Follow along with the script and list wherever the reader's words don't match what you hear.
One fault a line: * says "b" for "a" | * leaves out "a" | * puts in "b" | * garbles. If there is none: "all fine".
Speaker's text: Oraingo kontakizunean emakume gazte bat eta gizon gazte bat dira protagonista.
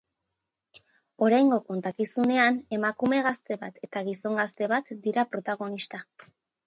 all fine